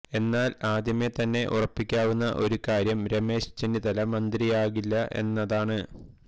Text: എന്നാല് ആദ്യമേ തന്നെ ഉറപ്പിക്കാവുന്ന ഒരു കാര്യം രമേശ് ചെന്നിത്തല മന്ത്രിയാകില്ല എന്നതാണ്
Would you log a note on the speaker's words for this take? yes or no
no